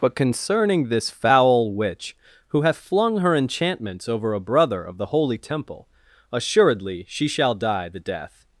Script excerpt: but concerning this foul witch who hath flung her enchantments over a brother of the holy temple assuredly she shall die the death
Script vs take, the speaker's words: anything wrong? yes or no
no